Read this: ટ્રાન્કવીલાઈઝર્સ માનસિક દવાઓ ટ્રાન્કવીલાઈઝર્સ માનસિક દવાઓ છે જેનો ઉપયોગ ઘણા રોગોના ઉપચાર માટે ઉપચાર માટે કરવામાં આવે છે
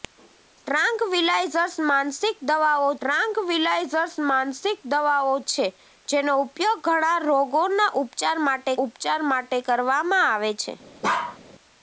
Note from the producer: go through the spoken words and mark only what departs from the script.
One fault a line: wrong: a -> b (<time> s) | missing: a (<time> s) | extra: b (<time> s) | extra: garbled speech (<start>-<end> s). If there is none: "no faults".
no faults